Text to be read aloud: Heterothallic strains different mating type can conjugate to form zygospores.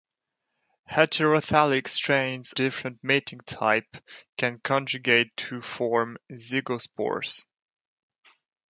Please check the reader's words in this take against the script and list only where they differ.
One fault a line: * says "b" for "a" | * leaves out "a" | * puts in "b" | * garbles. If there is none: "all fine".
all fine